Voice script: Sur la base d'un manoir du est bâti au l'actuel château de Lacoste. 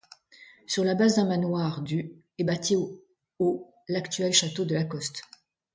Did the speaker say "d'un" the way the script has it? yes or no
yes